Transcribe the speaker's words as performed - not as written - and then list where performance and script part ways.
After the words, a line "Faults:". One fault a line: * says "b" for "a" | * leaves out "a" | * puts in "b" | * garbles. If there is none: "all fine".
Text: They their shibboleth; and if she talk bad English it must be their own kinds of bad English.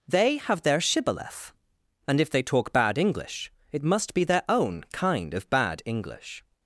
They have their shibboleth; and if they talk bad English it must be their own kind of bad English.
Faults:
* puts in "have"
* says "they" for "she"
* says "kind" for "kinds"